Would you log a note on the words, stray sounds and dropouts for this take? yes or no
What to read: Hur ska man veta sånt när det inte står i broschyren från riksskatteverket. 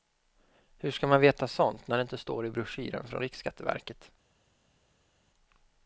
no